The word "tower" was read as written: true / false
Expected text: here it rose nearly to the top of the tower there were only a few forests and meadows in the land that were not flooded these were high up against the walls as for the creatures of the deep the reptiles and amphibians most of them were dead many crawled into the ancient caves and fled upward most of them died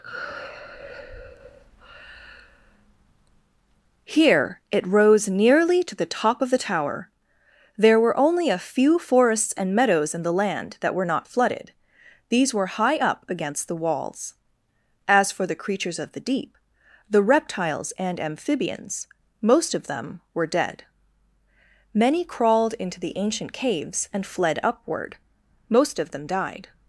true